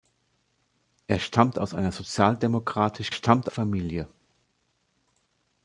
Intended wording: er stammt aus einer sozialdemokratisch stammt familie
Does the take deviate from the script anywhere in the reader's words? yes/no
no